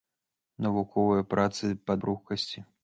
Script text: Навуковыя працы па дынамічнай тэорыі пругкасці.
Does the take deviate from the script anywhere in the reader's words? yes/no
yes